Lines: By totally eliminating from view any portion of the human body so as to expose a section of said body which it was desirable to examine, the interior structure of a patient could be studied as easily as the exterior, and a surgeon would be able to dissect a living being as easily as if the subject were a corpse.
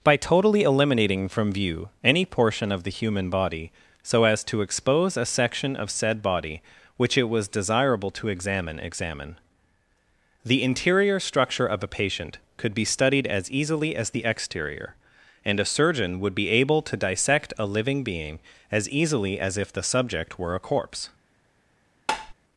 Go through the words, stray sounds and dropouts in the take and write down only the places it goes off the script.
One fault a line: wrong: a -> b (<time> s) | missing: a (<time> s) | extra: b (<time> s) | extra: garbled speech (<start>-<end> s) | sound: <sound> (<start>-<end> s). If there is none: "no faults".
extra: examine (8.8 s)
sound: tap (22.1-22.3 s)